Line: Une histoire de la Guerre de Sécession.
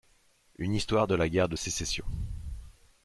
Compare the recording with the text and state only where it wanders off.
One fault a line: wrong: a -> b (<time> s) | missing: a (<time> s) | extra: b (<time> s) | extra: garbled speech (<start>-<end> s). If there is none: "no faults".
no faults